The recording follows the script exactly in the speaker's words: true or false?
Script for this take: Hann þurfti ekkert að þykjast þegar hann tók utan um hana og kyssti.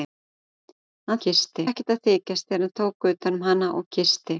false